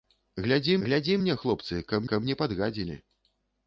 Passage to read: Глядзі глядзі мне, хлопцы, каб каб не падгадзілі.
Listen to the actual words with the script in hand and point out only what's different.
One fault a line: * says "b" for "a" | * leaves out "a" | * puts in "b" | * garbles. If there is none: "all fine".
all fine